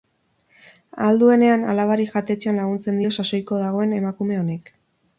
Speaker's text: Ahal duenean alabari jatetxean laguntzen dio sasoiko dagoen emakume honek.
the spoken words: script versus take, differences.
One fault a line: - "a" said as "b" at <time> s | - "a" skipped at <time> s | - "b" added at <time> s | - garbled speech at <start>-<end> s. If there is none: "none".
none